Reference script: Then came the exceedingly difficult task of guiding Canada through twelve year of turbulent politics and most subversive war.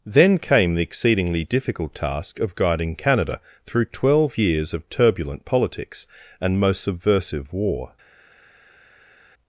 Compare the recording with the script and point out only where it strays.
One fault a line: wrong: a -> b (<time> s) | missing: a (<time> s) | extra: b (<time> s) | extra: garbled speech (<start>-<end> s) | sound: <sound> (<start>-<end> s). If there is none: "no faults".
wrong: year -> years (4.4 s)